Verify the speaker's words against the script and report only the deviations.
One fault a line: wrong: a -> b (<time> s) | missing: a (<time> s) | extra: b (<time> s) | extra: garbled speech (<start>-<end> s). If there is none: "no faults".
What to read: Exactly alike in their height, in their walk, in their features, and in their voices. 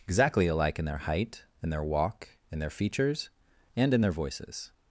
no faults